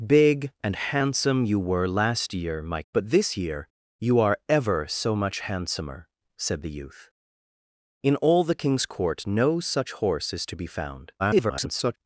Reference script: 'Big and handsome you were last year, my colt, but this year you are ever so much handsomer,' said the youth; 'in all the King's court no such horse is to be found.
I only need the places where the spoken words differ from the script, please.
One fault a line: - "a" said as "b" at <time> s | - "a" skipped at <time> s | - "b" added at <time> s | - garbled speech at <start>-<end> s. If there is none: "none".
- "colt" skipped at 2.8 s
- garbled speech at 11.2-12.0 s